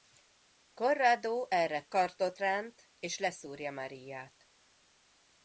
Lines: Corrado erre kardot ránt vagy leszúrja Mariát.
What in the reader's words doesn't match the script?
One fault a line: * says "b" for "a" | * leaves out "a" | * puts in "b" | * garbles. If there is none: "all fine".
* says "és" for "vagy"